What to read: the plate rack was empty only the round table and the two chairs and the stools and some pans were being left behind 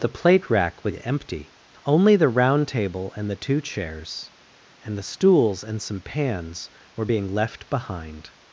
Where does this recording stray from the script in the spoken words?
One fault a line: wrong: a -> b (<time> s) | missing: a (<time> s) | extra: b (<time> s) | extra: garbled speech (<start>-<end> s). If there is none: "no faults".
no faults